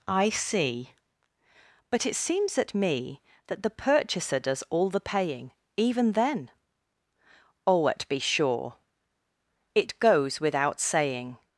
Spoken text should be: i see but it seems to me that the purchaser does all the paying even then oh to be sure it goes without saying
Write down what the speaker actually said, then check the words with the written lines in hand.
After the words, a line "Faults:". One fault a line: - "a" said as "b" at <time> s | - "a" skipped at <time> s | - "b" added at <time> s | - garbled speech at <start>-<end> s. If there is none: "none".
i see but it seems at me that the purchaser does all the paying even then oh at be sure it goes without saying
Faults:
- "to" said as "at" at 2.6 s
- "to" said as "at" at 7.9 s